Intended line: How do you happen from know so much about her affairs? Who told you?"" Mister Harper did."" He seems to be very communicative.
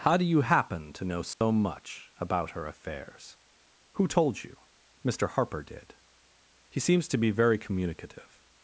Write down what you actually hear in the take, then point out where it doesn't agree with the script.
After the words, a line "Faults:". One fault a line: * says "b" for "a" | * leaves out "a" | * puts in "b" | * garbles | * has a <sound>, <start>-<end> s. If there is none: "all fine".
How do you happen to know so much about her affairs? Who told you?"" Mister Harper did."" He seems to be very communicative.
Faults:
* says "to" for "from"
* has a dropout, 1.3-1.4 s